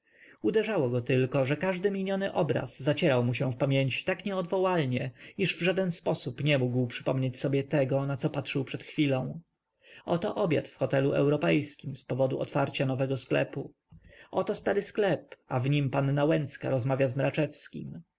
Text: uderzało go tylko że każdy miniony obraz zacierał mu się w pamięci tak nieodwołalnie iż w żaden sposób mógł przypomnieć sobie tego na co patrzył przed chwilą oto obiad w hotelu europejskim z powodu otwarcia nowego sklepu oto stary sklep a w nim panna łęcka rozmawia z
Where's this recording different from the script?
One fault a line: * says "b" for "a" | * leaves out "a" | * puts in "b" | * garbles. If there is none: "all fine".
* puts in "nie"